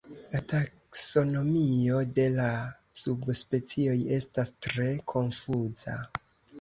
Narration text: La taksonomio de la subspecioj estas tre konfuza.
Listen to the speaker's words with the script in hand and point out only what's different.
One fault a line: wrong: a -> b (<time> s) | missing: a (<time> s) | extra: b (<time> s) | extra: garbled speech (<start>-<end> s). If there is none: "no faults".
no faults